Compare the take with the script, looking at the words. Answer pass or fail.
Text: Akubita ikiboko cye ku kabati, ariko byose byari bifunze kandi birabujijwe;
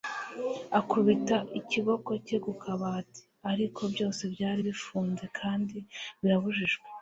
pass